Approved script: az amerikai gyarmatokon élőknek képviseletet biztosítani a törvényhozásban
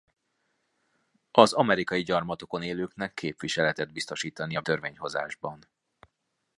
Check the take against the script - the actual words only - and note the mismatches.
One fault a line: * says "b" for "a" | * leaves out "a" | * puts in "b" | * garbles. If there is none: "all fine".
all fine